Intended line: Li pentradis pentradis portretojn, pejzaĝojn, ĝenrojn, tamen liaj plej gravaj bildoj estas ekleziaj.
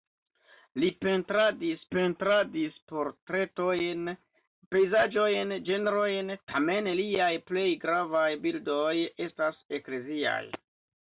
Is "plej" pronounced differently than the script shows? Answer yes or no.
no